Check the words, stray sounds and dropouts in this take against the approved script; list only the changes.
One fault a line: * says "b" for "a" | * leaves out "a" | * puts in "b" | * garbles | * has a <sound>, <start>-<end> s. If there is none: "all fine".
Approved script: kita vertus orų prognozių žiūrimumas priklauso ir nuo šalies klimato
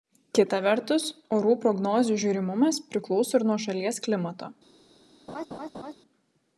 * has a laugh, 5.3-5.9 s